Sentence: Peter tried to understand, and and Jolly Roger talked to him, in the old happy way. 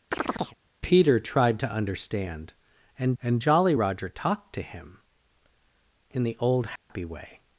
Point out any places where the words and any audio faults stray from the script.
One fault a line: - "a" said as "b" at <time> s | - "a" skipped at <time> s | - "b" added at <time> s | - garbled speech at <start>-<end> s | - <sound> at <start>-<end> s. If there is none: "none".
- chirp at 0.1-0.6 s
- dropout at 6.8-6.9 s